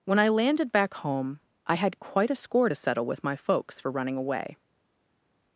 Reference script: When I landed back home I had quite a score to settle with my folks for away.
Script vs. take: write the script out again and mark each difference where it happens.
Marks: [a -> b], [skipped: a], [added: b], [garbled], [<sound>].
When I landed back home I had quite a score to settle with my folks for [added: running] away.